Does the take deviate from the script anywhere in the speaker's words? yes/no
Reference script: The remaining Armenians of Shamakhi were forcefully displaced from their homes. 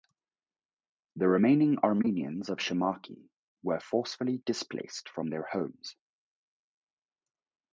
no